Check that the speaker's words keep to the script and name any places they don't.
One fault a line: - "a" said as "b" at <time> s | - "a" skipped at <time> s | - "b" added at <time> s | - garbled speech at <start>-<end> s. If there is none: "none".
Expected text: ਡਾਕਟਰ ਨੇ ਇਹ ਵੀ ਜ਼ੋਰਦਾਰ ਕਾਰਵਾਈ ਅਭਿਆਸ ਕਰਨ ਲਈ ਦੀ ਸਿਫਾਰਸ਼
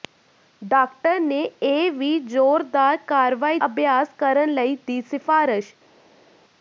none